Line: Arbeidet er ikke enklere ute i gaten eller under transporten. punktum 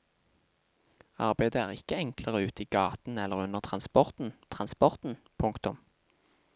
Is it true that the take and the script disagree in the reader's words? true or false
true